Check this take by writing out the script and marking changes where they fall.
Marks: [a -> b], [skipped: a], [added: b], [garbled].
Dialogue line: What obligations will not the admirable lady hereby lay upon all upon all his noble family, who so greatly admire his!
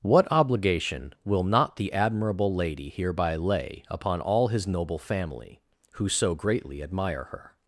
What [obligations -> obligation] will not the admirable lady hereby lay upon all [skipped: upon all] his noble family, who so greatly admire [his! -> her]